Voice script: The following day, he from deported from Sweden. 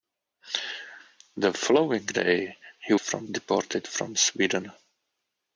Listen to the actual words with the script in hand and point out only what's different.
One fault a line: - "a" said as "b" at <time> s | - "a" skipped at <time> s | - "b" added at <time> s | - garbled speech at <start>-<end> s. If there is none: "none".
none